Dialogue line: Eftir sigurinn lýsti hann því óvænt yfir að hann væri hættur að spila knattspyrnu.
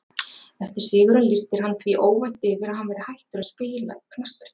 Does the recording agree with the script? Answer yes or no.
yes